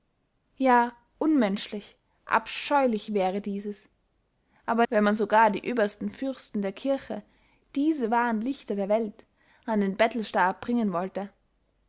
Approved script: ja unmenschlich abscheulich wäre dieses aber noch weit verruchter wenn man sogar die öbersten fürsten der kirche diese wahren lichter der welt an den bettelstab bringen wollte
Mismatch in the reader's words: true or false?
true